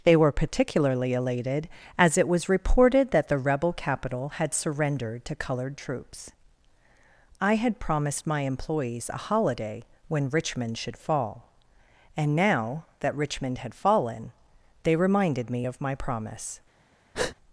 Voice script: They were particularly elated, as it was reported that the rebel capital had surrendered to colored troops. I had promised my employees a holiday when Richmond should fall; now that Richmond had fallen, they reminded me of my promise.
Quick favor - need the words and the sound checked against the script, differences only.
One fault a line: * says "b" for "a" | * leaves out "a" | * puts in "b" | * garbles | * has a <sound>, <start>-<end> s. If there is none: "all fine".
* puts in "and"
* has a breath, 17.1-17.4 s